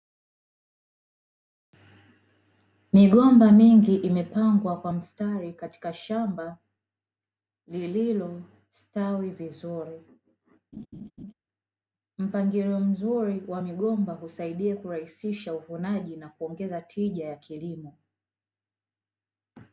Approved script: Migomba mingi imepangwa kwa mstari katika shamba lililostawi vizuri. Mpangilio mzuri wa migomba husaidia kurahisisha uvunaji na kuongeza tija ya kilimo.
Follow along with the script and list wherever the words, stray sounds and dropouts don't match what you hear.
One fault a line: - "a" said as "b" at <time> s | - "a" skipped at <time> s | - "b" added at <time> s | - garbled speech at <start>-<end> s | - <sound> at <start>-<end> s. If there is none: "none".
- laugh at 10.7-11.3 s